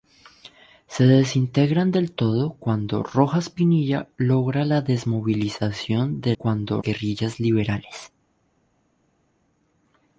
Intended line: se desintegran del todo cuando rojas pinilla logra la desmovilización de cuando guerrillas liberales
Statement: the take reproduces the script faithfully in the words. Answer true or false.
true